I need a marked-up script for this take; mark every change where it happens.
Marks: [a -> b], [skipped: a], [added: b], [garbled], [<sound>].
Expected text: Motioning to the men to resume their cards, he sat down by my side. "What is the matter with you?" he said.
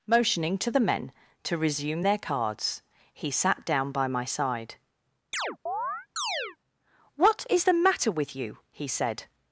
Motioning to the men to resume their cards, he sat down by my side. [chirp] "What is the matter with you?" he said.